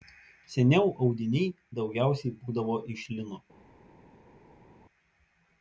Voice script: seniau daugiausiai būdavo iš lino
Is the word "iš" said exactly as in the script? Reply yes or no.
yes